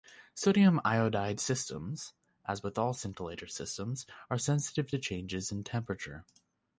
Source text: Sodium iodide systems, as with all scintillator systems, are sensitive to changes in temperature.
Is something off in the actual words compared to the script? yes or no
no